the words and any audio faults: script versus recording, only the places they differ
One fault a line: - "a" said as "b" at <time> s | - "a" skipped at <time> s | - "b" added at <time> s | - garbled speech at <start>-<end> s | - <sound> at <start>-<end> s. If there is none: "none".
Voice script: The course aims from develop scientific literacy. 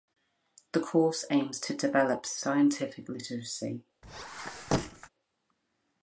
- "from" said as "to" at 1.6 s
- squeak at 4.0-5.1 s